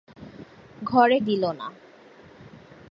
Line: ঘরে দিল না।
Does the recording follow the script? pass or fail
pass